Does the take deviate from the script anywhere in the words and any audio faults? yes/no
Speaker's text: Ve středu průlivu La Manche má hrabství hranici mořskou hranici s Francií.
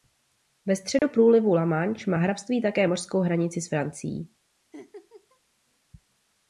yes